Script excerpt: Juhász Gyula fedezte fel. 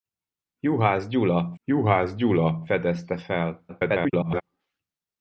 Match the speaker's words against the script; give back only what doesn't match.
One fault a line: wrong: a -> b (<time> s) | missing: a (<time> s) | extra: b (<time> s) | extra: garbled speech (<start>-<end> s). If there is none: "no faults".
extra: juhász Gyula (1.6 s)
extra: garbled speech (3.7-4.4 s)